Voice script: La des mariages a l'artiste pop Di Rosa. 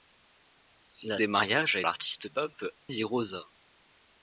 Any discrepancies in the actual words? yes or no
no